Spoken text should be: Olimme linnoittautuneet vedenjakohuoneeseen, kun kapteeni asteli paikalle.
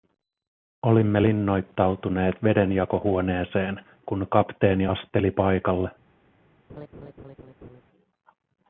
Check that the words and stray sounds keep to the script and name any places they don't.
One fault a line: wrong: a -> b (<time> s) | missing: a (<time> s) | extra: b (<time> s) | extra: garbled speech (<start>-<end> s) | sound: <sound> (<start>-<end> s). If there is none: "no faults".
sound: laugh (6.7-7.8 s)